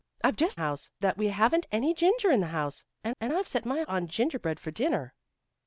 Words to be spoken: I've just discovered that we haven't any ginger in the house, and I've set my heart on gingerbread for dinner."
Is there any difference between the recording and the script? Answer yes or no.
yes